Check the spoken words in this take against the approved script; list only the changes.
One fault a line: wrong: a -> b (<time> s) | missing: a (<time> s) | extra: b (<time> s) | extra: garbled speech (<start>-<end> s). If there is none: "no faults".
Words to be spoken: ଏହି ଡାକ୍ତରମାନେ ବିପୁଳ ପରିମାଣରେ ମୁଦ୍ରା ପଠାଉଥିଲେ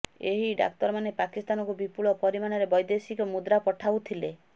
extra: ପାକିସ୍ତାନକୁ (1.2 s)
extra: ବୈଦେଶିକ (2.8 s)